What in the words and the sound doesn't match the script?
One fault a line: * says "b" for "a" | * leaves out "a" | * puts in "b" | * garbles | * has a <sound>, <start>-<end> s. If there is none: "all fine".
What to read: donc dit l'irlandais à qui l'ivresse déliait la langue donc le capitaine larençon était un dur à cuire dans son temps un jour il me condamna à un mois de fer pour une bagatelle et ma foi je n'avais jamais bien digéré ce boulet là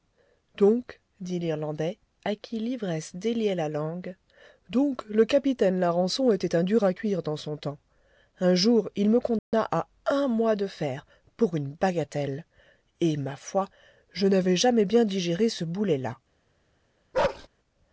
* has a dropout, 9.4-9.5 s
* has a bark, 17.1-17.5 s